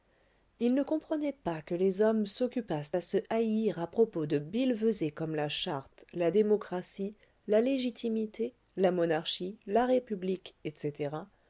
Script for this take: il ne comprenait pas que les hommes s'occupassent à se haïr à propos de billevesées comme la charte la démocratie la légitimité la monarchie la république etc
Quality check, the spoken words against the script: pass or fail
pass